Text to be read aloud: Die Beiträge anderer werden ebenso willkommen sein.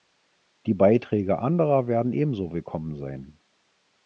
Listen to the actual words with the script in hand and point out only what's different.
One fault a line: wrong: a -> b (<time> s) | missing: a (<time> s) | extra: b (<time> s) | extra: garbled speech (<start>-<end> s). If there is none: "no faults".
no faults